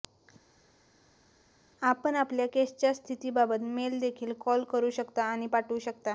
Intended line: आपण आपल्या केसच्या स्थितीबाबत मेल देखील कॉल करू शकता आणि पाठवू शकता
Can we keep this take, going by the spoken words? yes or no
yes